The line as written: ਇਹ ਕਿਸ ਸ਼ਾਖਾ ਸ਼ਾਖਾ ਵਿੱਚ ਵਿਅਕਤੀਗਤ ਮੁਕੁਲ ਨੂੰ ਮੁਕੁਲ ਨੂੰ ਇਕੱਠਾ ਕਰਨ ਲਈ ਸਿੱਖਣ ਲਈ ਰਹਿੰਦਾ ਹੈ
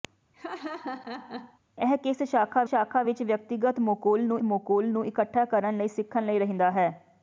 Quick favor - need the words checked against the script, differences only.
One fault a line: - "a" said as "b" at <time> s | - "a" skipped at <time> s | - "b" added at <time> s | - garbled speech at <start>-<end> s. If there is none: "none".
none